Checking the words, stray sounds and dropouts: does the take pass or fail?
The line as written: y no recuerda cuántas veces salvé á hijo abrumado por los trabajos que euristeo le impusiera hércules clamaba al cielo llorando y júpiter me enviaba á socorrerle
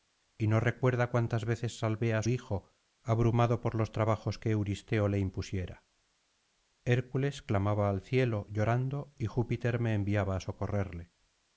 pass